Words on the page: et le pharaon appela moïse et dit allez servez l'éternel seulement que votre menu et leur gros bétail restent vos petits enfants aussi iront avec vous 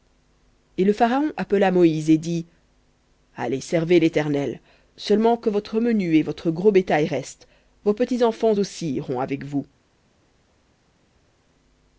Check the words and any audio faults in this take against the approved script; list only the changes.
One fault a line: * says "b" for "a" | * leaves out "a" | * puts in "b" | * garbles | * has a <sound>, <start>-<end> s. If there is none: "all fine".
* says "votre" for "leur"